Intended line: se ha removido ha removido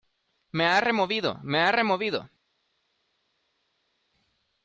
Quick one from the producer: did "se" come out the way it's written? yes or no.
no